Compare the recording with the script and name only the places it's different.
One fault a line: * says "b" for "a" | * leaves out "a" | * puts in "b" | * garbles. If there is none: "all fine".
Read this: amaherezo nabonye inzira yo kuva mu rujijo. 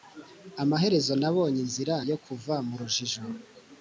all fine